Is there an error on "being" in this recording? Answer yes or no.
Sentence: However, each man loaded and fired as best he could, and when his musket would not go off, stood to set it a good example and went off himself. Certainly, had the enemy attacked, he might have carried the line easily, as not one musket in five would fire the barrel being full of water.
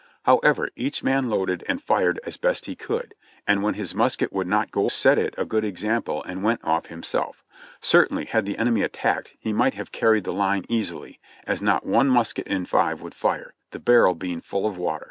no